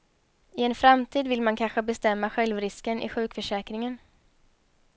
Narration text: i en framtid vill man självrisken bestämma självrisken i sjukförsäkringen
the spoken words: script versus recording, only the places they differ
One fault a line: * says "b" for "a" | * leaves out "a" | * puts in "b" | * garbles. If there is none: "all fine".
* says "kanske" for "självrisken"